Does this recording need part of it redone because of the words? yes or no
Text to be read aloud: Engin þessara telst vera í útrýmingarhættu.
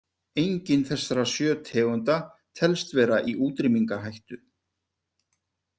yes